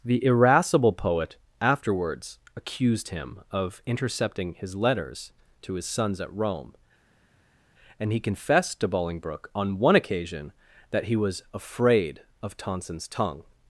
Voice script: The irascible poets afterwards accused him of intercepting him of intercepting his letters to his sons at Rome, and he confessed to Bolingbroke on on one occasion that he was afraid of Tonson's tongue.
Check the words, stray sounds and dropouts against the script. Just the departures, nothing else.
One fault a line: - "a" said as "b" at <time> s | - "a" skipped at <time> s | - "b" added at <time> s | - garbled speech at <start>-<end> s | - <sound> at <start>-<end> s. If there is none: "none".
- "poets" said as "poet" at 0.9 s
- "him of intercepting" skipped at 4.5 s
- "on" skipped at 9.8 s